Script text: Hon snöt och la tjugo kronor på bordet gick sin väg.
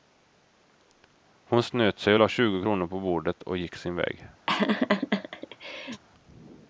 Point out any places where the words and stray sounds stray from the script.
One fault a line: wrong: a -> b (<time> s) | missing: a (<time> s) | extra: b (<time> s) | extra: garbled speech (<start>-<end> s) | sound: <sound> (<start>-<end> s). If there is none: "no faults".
extra: sig (2.0 s)
extra: och (3.4 s)
sound: laugh (4.5-6.0 s)